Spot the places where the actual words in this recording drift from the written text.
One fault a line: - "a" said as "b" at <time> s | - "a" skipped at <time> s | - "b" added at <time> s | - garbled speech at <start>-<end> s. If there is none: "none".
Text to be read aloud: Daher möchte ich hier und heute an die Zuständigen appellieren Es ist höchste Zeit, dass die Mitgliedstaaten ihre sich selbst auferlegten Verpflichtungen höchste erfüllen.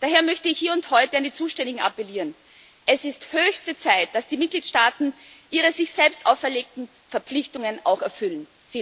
- "höchste" said as "auch" at 7.8 s